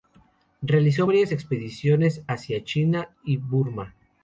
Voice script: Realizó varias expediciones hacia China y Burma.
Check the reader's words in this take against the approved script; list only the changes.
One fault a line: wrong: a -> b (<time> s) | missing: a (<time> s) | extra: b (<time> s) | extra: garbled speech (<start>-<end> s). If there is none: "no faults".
no faults